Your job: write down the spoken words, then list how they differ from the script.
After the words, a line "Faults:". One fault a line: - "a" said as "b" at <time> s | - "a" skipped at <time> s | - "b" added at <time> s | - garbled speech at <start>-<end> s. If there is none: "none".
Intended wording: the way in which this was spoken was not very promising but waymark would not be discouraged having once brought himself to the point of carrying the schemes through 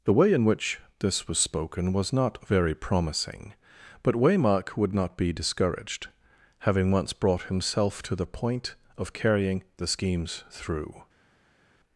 the way in which this was spoken was not very promising but waymark would not be discouraged having once brought himself to the point of carrying the schemes through
Faults:
none